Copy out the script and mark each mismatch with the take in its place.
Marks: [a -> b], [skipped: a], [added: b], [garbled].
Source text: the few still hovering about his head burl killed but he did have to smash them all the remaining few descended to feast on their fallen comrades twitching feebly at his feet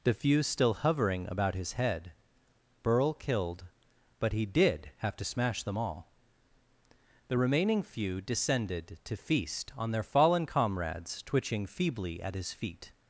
the few still hovering about his head burl killed but he did have to smash them all the remaining few descended to feast on their fallen comrades twitching feebly at his feet